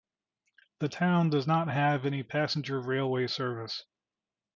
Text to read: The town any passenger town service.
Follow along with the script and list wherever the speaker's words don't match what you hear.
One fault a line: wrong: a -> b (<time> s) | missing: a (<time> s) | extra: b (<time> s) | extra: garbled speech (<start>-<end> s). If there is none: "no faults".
extra: does not have (1.3 s)
wrong: town -> railway (2.8 s)